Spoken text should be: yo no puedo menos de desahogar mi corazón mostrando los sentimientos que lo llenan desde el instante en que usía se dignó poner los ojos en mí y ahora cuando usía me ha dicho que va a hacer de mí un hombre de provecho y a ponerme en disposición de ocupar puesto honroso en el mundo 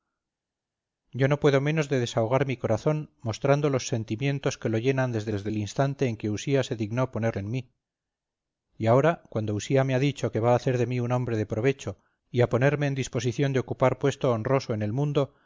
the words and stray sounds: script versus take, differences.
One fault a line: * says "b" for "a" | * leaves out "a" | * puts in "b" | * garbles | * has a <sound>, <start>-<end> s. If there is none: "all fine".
* puts in "desde"
* leaves out "los ojos"